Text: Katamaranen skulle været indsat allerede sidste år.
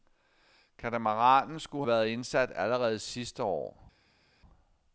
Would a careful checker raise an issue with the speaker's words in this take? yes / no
no